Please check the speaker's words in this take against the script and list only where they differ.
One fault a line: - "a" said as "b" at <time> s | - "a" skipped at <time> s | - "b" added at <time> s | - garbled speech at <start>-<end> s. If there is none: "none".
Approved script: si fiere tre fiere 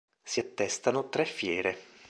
- "fiere" said as "attestano" at 0.4 s